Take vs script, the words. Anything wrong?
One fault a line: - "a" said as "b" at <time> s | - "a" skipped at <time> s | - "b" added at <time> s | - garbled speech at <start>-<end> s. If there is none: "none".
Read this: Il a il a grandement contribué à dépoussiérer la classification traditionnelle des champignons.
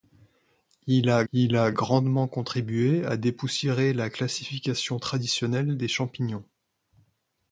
none